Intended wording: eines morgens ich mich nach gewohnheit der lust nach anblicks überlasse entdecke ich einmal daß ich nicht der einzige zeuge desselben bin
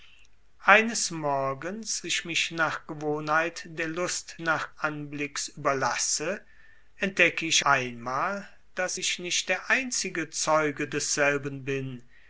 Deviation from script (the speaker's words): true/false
false